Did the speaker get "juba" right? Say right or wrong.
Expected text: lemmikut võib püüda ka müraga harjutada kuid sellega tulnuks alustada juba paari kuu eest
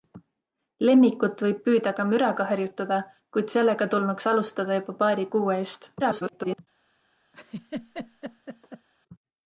right